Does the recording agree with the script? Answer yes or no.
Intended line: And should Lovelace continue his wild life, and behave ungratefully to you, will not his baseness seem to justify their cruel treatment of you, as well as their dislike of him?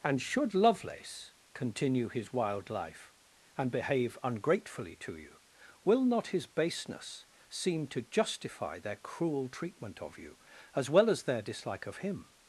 yes